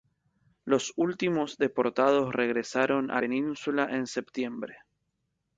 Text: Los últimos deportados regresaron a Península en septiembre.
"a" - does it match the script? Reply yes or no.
yes